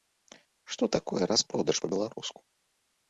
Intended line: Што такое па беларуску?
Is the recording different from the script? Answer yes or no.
yes